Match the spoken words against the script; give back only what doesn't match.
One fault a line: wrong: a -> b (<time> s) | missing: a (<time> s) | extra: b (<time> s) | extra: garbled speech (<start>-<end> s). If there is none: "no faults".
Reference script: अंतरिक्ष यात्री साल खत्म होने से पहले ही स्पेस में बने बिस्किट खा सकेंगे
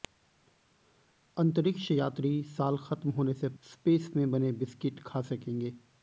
missing: पहले ही (3.5 s)